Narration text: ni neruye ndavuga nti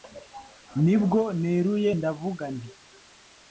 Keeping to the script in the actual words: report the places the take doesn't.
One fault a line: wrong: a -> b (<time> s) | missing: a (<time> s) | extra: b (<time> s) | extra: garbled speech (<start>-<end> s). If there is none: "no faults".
extra: bwo (1.0 s)